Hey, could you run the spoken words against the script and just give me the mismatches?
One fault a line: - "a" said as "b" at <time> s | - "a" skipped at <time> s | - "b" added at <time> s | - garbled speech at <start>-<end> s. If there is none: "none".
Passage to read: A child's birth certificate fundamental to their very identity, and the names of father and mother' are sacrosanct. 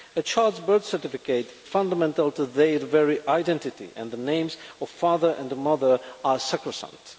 none